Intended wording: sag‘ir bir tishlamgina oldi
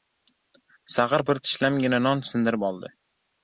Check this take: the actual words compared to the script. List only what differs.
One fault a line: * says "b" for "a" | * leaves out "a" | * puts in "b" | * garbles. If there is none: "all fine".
* puts in "non sindirib"